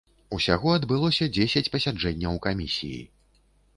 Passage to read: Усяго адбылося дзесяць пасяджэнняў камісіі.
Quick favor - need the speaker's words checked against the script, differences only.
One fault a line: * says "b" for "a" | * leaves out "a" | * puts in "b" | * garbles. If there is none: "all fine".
all fine